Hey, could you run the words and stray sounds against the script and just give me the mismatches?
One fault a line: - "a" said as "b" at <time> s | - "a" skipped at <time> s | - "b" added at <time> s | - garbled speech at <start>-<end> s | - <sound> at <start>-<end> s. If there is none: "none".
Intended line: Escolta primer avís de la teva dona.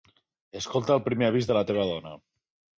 - "el" added at 0.9 s